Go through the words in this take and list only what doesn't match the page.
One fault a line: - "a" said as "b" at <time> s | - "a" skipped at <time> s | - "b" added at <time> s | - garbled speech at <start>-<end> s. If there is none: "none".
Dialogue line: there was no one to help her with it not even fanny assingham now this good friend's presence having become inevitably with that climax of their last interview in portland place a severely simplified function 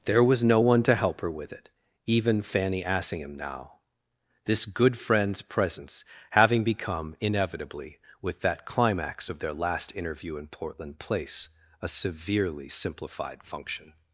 - "not" skipped at 1.7 s